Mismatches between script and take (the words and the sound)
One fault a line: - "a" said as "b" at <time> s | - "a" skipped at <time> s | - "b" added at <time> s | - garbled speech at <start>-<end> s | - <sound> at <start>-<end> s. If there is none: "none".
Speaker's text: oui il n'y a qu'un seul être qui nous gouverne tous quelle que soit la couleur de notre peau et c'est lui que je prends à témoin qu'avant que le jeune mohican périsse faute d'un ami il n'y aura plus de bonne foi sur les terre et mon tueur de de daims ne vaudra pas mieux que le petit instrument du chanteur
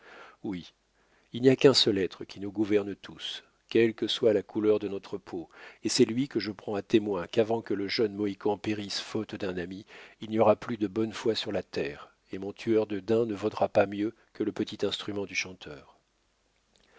- "les" said as "la" at 11.5 s
- "de" skipped at 13.0 s